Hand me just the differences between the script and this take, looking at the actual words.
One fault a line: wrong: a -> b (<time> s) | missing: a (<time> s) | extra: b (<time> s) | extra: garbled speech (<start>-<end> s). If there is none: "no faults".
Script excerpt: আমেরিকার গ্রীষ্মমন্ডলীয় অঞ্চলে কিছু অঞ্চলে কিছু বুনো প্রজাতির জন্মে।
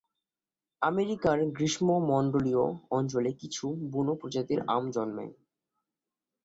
missing: অঞ্চলে কিছু (3.6 s)
extra: আম (4.7 s)